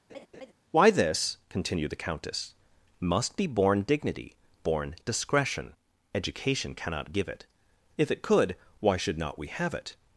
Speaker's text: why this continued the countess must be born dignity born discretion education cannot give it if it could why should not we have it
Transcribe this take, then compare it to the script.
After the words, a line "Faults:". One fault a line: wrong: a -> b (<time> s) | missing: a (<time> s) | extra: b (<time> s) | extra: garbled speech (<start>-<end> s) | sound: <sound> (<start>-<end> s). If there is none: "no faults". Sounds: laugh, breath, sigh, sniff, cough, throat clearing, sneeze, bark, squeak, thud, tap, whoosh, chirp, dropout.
why this continued the countess must be born dignity born discretion education cannot give it if it could why should not we have it
Faults:
sound: laugh (0.1-0.5 s)